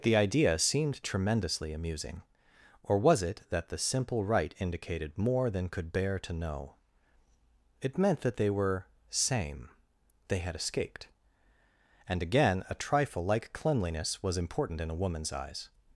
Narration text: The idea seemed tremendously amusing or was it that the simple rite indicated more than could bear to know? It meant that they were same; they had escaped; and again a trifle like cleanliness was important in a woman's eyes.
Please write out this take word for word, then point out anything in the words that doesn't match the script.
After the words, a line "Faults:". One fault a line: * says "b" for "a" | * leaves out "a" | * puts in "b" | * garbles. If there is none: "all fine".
The idea seemed tremendously amusing or was it that the simple rite indicated more than could bear to know? It meant that they were same; they had escaped; and again a trifle like cleanliness was important in a woman's eyes.
Faults:
all fine